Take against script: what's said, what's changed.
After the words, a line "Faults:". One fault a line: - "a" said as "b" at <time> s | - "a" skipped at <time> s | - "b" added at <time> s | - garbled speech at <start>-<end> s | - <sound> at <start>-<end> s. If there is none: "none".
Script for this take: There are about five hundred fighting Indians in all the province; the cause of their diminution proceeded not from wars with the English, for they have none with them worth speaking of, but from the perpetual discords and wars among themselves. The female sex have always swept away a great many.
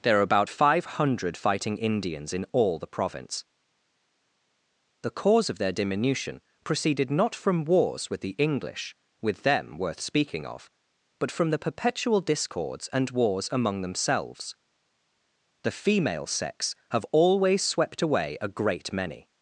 There are about five hundred fighting Indians in all the province; the cause of their diminution proceeded not from wars with the English, with them worth speaking of, but from the perpetual discords and wars among themselves. The female sex have always swept away a great many.
Faults:
- "for they have none" skipped at 9.0 s